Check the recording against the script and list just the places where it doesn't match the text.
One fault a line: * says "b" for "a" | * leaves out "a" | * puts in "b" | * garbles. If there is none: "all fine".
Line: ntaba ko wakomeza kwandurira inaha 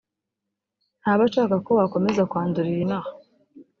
* puts in "ashaka"